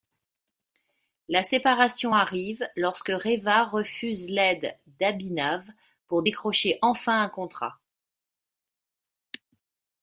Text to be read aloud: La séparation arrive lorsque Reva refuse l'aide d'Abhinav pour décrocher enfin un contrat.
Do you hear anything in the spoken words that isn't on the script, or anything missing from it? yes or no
no